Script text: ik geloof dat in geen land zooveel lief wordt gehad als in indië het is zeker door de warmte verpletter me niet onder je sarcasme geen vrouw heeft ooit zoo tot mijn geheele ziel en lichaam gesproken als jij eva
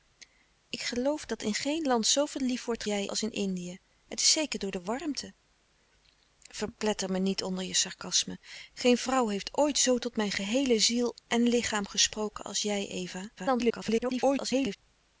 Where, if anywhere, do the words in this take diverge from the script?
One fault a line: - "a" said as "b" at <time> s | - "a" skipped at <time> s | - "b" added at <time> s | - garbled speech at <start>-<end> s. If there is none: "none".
- "gehad" said as "jij" at 2.8 s
- garbled speech at 13.4-14.8 s